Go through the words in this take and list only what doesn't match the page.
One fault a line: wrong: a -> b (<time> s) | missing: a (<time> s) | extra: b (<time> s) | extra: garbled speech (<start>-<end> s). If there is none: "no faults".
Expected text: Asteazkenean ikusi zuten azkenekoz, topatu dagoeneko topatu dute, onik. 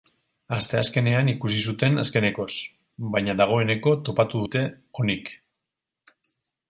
wrong: topatu -> baina (3.1 s)